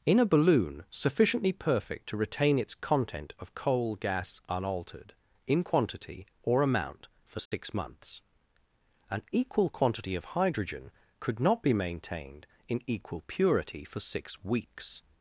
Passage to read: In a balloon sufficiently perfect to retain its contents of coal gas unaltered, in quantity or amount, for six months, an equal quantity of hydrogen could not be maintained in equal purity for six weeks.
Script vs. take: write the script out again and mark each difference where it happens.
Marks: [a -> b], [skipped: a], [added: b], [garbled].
In a balloon sufficiently perfect to retain its [contents -> content] of coal gas unaltered, in quantity or amount, for six months, an equal quantity of hydrogen could not be maintained in equal purity for six weeks.